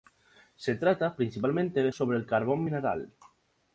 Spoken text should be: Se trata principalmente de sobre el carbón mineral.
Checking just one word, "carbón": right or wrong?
right